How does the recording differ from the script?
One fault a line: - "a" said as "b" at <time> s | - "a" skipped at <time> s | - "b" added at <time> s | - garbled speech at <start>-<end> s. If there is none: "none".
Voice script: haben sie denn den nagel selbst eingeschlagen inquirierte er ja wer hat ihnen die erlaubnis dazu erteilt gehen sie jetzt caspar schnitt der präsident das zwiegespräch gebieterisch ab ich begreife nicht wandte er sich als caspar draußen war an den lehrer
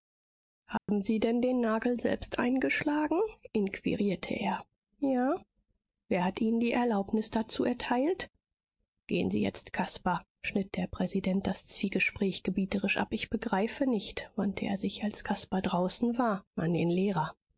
none